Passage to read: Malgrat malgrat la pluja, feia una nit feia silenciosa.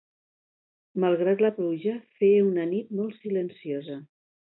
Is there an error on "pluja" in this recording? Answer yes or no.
no